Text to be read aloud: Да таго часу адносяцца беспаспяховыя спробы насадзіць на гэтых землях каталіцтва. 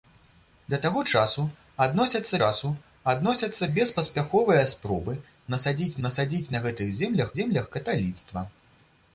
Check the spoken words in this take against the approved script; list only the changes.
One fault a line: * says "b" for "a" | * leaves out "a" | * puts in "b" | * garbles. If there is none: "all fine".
* puts in "часу адносяцца"
* puts in "насадзіць"
* puts in "землях"